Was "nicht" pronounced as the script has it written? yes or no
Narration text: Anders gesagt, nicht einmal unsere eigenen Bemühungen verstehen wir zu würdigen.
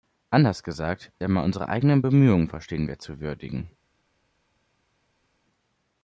no